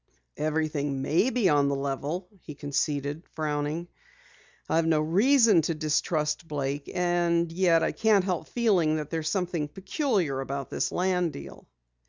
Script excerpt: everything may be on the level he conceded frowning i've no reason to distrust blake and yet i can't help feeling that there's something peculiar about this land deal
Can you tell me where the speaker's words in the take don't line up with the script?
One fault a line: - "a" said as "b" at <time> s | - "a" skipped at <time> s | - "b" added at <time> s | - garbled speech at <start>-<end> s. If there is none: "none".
none